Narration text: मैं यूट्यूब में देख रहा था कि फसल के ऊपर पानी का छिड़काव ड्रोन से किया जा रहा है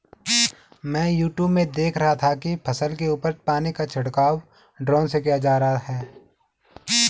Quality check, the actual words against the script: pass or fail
pass